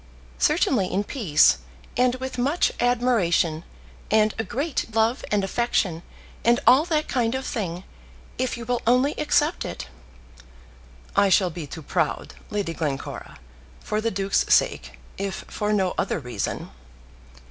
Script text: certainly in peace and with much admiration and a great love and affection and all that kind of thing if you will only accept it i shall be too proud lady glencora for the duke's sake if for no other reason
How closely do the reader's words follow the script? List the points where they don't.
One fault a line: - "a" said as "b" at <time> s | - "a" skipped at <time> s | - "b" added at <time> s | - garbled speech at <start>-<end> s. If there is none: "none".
none